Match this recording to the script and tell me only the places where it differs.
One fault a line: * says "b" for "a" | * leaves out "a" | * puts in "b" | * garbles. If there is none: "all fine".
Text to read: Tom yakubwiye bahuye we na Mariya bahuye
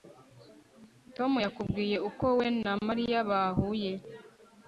* says "uko" for "bahuye"